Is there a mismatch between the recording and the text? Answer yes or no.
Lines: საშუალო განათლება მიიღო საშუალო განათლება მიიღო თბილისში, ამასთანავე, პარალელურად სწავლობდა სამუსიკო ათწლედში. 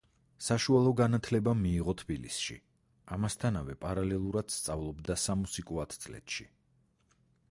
yes